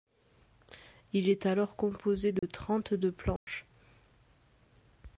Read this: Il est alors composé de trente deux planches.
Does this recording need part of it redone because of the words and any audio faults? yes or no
yes